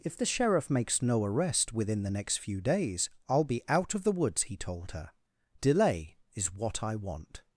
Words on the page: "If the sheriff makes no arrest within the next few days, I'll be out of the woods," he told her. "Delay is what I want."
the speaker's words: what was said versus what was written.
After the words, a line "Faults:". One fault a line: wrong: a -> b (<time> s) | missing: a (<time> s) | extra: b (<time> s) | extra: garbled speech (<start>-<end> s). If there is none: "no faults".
"If the sheriff makes no arrest within the next few days, I'll be out of the woods," he told her. "Delay is what I want."
Faults:
no faults